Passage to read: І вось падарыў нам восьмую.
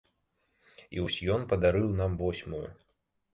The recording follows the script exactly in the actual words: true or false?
false